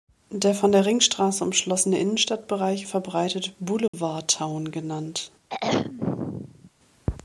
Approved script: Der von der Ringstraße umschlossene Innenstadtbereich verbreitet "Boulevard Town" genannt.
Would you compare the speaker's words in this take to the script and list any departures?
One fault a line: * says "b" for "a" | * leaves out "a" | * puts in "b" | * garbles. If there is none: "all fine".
all fine